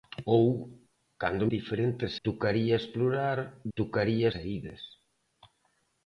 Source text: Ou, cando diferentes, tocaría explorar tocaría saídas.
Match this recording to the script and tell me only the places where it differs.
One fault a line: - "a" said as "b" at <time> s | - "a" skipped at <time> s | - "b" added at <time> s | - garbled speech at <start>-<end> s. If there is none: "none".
none